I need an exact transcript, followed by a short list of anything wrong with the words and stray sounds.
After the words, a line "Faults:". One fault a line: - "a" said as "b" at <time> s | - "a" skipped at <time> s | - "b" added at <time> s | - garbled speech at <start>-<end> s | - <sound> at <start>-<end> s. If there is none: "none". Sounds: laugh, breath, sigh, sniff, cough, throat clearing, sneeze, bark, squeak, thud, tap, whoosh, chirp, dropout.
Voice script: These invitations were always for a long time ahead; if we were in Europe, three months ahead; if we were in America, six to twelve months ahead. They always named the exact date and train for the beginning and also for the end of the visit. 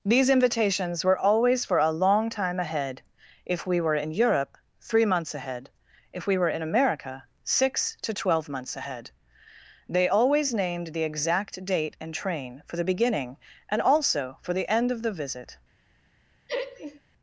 These invitations were always for a long time ahead; if we were in Europe, three months ahead; if we were in America, six to twelve months ahead. They always named the exact date and train for the beginning and also for the end of the visit.
Faults:
- laugh at 16.5-17.0 s